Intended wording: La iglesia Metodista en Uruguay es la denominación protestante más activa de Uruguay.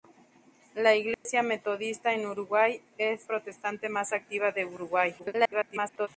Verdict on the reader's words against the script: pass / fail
fail